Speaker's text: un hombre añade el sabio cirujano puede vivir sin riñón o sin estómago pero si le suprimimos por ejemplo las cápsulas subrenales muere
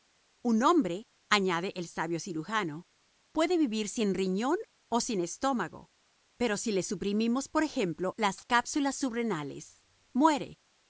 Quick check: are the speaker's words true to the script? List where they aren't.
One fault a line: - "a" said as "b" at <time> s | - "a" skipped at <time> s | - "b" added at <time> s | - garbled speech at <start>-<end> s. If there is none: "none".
none